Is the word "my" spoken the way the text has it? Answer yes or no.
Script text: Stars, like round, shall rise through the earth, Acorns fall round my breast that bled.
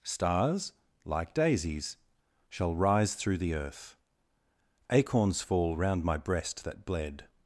yes